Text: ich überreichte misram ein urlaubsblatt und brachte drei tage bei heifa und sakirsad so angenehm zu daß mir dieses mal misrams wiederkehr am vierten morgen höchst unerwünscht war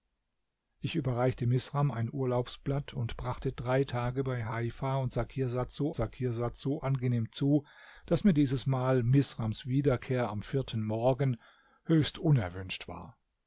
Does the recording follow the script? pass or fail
fail